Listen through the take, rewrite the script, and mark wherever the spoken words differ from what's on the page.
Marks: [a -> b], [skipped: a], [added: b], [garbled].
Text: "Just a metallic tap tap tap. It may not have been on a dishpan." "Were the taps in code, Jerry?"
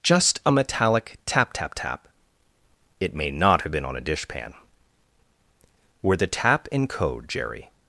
"Just a metallic tap tap tap. It may not have been on a dishpan." "Were the [taps -> tap] in code, Jerry?"